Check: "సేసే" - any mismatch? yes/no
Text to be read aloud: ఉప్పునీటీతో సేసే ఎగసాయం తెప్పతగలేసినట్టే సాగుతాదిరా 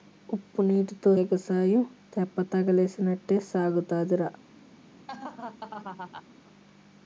yes